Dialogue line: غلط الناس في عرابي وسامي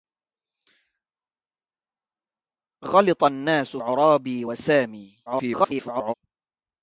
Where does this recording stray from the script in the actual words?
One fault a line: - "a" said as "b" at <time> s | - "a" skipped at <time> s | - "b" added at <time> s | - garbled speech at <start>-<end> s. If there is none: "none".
- "في" skipped at 3.8 s
- garbled speech at 5.3-6.1 s